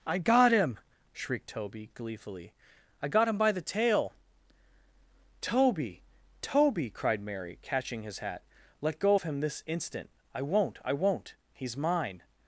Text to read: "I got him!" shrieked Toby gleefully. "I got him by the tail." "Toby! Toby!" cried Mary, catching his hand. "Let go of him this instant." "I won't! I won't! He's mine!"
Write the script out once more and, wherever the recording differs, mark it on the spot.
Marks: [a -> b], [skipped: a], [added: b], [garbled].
"I got him!" shrieked Toby gleefully. "I got him by the tail." "Toby! Toby!" cried Mary, catching his [hand. -> hat] "Let go of him this instant." "I won't! I won't! He's mine!"